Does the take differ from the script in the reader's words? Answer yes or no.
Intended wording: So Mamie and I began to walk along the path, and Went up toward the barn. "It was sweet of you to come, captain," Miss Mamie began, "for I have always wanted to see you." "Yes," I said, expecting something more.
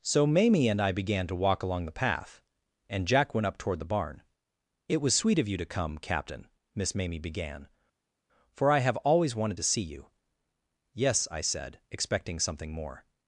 yes